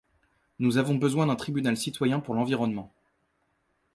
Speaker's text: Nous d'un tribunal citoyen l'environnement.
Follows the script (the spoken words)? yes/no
no